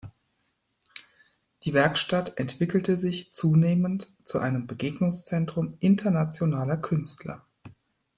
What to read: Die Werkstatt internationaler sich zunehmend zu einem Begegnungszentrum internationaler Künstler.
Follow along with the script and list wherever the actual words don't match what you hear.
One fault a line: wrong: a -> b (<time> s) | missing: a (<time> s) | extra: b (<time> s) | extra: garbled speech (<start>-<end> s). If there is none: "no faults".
wrong: internationaler -> entwickelte (2.4 s)